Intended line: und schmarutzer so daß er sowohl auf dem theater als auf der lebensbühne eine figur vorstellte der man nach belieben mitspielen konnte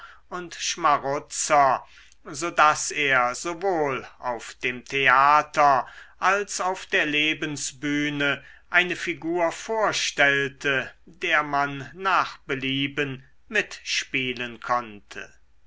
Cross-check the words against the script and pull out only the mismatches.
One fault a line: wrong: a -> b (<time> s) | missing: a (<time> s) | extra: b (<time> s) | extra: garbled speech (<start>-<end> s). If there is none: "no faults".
no faults